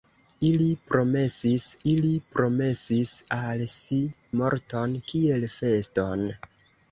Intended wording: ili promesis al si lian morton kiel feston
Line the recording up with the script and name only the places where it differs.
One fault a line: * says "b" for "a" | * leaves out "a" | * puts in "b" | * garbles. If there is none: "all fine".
* puts in "ili promesis"
* leaves out "lian"